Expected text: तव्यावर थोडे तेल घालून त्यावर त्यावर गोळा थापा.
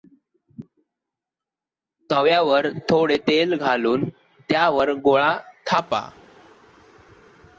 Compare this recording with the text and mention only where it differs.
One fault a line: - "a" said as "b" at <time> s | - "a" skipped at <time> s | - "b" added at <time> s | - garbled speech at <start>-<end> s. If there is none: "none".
- "त्यावर" skipped at 4.9 s